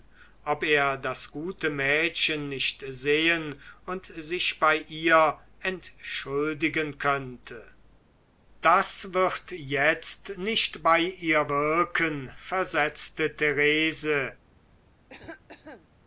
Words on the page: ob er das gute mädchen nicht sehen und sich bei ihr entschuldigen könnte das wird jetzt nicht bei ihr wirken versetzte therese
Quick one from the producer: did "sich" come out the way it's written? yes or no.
yes